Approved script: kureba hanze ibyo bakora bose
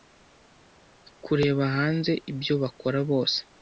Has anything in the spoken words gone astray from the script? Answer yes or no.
no